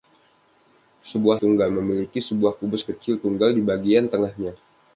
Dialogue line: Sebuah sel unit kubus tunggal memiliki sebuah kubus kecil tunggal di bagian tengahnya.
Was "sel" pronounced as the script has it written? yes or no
no